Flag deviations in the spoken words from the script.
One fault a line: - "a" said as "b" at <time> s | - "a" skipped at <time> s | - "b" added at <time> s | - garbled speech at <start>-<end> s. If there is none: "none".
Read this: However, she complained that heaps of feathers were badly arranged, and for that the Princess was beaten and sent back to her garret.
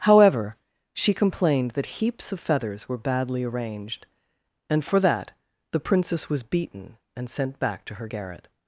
none